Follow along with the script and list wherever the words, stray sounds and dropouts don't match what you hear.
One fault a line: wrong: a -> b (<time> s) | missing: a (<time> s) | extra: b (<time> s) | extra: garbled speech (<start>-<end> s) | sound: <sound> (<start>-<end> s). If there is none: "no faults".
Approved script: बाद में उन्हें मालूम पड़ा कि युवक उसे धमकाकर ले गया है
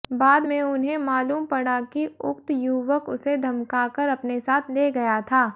extra: उक्त (2.2 s)
extra: अपने साथ (4.1 s)
wrong: है -> था (5.2 s)